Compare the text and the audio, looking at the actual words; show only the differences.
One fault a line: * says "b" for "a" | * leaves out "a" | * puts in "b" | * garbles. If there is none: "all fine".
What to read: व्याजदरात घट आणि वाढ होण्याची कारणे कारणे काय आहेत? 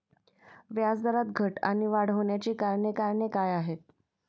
all fine